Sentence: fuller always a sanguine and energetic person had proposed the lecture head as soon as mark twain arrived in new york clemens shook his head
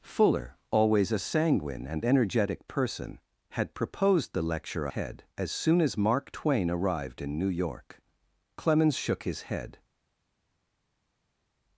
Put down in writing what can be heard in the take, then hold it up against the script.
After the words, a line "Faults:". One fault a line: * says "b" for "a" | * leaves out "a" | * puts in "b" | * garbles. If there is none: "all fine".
fuller always a sanguine and energetic person had proposed the lecture head as soon as mark twain arrived in new york clemens shook his head
Faults:
all fine